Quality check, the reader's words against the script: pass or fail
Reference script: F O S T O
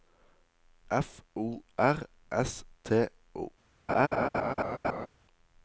fail